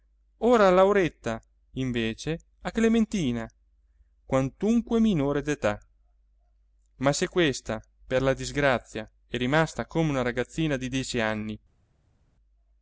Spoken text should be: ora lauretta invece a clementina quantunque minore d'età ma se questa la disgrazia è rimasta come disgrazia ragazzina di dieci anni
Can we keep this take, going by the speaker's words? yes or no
no